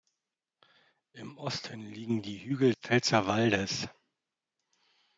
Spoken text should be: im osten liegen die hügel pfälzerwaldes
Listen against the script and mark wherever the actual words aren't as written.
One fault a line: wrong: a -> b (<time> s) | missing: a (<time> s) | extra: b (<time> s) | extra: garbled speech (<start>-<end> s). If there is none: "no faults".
no faults